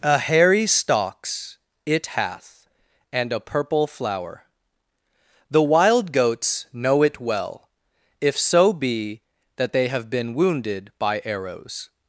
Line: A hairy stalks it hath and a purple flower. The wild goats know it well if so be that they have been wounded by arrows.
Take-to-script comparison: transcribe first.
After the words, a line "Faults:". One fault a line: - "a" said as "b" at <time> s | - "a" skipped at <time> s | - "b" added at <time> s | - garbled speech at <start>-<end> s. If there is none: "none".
A hairy stalks it hath and a purple flower. The wild goats know it well if so be that they have been wounded by arrows.
Faults:
none